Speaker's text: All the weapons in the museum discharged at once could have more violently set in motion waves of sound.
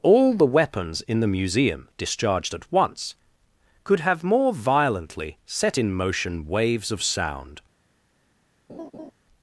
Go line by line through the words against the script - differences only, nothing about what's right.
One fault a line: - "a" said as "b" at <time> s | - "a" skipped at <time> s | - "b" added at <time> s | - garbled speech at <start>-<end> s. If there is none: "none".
none